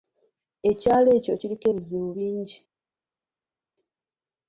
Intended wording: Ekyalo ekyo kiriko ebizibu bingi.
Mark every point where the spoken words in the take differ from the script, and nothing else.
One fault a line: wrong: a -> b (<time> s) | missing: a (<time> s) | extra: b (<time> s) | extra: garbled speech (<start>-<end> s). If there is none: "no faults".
no faults